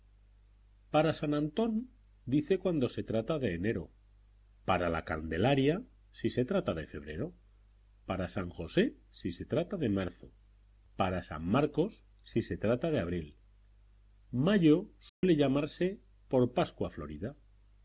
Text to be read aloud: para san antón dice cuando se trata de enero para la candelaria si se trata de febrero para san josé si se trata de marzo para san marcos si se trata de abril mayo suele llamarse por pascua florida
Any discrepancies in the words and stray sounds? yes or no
yes